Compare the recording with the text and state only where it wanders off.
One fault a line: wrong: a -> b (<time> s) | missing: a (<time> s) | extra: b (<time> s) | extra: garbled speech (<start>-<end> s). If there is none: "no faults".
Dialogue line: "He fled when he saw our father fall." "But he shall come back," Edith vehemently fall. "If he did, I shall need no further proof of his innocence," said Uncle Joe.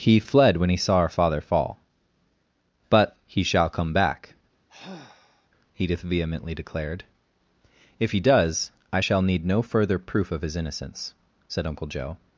wrong: fall -> declared (6.5 s)
wrong: did -> does (8.2 s)